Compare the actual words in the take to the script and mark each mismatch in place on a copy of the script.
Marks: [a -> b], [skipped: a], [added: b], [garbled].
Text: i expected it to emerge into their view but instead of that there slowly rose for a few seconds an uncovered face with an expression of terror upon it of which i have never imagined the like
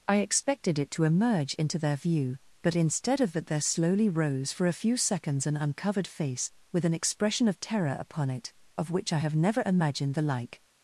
i expected it to emerge into their view but instead of that there slowly rose for a few seconds an uncovered face with an expression of terror upon it of which i have never imagined the like